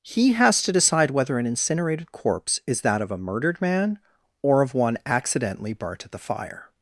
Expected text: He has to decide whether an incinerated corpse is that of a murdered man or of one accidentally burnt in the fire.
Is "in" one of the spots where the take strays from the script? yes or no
yes